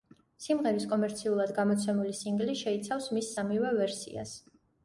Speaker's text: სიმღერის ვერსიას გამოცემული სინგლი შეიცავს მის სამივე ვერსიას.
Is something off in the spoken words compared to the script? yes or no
yes